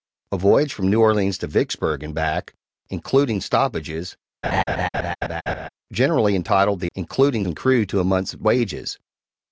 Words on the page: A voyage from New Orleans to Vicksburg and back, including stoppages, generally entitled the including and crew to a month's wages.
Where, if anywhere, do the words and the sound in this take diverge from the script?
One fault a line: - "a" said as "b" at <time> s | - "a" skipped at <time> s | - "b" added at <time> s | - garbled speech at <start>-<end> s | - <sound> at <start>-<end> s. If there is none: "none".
- laugh at 4.4-5.7 s